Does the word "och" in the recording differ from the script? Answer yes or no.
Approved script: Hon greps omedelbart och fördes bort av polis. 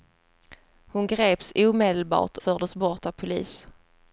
yes